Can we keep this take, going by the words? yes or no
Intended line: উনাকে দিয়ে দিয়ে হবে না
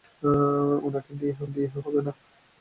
yes